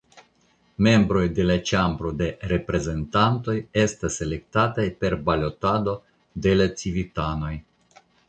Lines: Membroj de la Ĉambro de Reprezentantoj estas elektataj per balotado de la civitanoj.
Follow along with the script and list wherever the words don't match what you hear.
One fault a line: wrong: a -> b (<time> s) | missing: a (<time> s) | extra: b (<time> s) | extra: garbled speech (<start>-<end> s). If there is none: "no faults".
no faults